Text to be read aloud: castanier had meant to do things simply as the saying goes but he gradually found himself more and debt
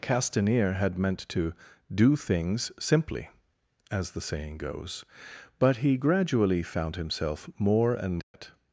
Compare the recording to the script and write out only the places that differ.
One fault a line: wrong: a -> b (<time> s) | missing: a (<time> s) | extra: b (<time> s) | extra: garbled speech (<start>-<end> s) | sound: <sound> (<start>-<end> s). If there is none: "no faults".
sound: dropout (8.2-8.3 s)